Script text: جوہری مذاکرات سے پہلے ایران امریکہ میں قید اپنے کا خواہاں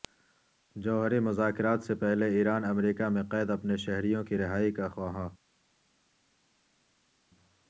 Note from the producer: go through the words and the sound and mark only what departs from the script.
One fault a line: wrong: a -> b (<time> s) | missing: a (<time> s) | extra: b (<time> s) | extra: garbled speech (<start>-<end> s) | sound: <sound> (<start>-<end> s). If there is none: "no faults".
extra: شہریوں کی رہائی (3.8 s)